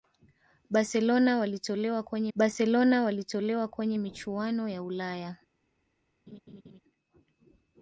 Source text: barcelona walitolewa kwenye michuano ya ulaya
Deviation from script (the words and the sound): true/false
true